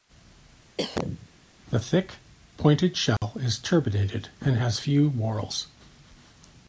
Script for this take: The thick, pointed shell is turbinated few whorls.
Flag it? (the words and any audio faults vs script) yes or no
yes